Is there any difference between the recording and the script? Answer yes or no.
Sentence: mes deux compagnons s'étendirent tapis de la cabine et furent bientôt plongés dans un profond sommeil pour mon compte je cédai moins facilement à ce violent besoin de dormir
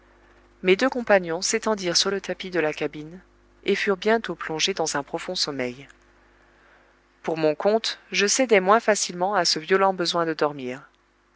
yes